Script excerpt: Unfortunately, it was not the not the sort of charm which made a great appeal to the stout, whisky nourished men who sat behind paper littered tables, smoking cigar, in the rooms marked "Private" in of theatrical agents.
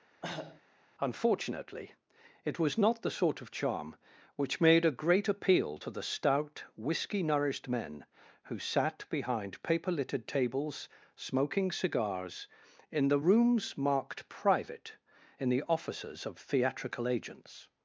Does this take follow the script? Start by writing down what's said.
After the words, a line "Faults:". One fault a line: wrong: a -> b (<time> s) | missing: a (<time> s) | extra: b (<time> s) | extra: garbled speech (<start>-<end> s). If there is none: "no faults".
Unfortunately, it was not the sort of charm which made a great appeal to the stout, whisky nourished men who sat behind paper littered tables, smoking cigars, in the rooms marked "Private" in the offices of theatrical agents.
Faults:
missing: not the (3.1 s)
wrong: cigar -> cigars (11.7 s)
extra: the offices (15.5 s)